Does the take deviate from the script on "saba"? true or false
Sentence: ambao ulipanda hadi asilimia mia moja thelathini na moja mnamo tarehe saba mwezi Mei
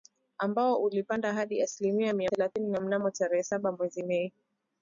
false